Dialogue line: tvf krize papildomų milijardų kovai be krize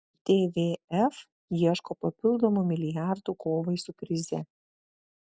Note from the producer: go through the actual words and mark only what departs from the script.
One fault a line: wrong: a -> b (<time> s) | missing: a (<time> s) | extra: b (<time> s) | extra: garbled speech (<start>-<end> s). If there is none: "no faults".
wrong: krize -> ieško (1.6 s)
wrong: be -> su (3.8 s)